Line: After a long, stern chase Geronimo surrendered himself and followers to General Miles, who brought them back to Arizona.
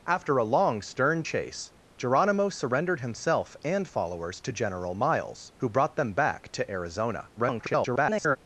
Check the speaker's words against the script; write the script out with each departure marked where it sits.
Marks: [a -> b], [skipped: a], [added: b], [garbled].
After a long, stern chase Geronimo surrendered himself and followers to General Miles, who brought them back to Arizona. [garbled]